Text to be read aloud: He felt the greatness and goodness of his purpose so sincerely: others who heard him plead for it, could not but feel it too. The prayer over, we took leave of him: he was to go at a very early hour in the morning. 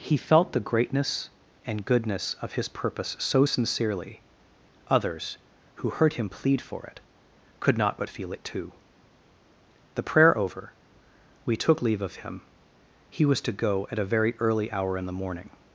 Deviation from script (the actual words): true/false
false